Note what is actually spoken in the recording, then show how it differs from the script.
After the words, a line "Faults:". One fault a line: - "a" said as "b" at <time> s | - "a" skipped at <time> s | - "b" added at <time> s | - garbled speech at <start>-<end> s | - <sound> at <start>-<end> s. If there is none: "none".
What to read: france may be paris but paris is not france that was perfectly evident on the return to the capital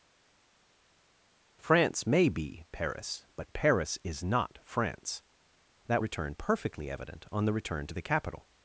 france may be paris but paris is not france that return perfectly evident on the return to the capital
Faults:
- "was" said as "return" at 6.0 s